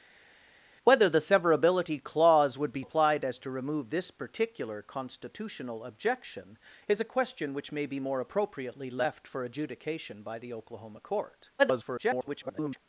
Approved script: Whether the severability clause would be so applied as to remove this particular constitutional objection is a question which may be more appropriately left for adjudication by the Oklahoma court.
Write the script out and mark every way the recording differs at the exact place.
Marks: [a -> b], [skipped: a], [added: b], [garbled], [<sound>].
Whether the severability clause would be [skipped: so] applied as to remove this particular constitutional objection is a question which may be more appropriately left for adjudication by the Oklahoma court. [garbled]